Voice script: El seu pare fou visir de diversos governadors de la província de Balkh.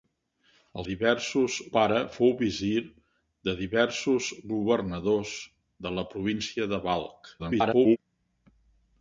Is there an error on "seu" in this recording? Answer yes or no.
yes